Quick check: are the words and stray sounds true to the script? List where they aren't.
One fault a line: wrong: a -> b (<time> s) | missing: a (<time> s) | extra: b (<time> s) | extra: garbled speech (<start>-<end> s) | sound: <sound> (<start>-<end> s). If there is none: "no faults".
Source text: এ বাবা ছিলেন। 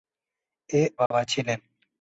sound: dropout (1.1-1.1 s)